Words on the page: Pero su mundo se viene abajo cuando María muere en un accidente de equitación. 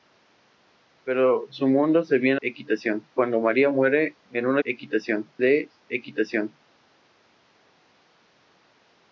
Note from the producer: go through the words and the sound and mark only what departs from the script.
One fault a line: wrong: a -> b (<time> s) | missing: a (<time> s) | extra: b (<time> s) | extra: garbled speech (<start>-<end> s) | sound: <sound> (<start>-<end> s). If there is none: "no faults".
wrong: abajo -> equitación (2.4 s)
wrong: accidente -> equitación (4.6 s)